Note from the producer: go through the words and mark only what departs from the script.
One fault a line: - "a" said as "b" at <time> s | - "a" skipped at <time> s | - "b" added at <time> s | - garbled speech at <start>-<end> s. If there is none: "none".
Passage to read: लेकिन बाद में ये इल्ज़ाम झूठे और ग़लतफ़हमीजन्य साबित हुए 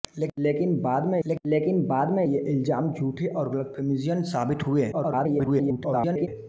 - "लेकिन बाद में" added at 1.3 s
- garbled speech at 4.9-6.3 s